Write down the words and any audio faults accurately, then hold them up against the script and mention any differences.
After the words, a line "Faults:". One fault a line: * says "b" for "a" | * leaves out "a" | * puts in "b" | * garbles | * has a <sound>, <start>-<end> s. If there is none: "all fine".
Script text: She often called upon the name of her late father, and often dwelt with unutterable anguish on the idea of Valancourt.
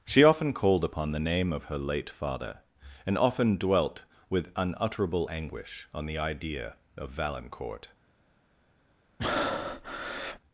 She often called upon the name of her late father, and often dwelt with unutterable anguish on the idea of Valancourt.
Faults:
* has a breath, 9.2-10.4 s